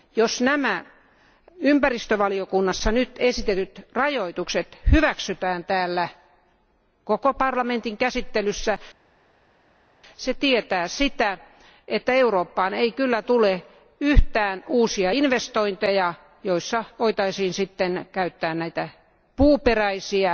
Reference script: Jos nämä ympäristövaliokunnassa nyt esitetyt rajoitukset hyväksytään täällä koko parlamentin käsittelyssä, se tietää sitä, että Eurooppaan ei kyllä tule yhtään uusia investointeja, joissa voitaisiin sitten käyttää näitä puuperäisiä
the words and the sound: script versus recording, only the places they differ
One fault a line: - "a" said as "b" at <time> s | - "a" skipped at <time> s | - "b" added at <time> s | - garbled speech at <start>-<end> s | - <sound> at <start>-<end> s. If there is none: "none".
none